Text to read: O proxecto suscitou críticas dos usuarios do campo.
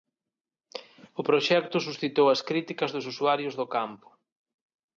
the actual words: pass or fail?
fail